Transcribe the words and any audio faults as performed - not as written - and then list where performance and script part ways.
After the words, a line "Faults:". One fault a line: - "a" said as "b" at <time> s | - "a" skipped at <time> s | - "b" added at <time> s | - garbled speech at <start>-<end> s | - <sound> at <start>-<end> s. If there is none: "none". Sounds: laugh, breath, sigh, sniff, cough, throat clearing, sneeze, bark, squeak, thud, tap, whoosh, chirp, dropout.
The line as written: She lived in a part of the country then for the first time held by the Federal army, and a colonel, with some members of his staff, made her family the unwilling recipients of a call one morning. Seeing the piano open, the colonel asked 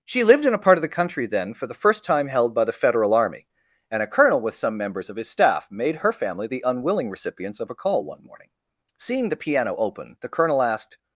She lived in a part of the country then for the first time held by the Federal army, and a colonel, with some members of his staff, made her family the unwilling recipients of a call one morning. Seeing the piano open, the colonel asked
Faults:
none